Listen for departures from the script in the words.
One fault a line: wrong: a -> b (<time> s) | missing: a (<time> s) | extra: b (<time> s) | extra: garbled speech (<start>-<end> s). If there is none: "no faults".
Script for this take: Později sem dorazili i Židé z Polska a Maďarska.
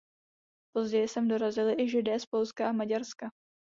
no faults